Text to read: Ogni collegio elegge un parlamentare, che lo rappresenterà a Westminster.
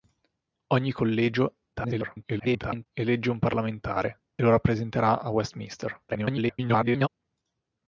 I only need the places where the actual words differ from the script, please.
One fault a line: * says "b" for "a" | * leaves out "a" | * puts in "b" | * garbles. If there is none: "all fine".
* garbles
* leaves out "che"
* garbles